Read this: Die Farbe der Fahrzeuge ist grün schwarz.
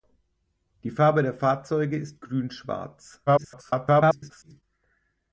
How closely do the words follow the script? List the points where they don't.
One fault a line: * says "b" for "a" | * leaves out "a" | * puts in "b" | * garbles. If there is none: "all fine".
* garbles